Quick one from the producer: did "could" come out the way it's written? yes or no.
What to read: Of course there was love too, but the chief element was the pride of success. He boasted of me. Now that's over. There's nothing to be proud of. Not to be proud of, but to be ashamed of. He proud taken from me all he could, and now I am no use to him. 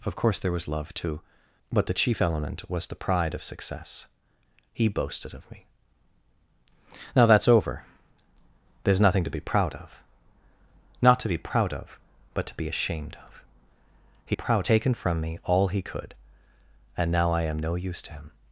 yes